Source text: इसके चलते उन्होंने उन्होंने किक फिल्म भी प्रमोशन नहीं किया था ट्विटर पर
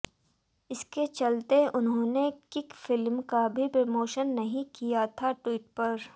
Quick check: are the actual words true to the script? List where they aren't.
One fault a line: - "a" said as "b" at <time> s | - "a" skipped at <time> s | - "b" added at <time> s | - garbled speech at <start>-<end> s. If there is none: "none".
- "उन्होंने" skipped at 2.3 s
- "का" added at 3.3 s